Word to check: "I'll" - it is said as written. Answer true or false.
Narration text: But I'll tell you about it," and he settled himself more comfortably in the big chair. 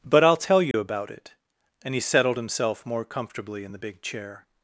true